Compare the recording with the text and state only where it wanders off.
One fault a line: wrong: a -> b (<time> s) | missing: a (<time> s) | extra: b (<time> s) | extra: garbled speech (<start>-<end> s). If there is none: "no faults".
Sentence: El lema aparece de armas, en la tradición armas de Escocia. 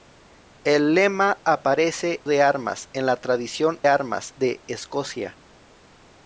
no faults